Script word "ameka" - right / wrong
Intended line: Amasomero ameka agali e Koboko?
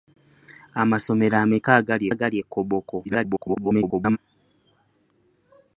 right